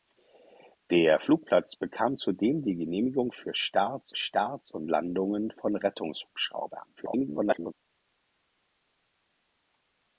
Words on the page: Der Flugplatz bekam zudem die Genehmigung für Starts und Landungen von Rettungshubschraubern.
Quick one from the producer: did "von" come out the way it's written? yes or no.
yes